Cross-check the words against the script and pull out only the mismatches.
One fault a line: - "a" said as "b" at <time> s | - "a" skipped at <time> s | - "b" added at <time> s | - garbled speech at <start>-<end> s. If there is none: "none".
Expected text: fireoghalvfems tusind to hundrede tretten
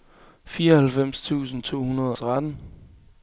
none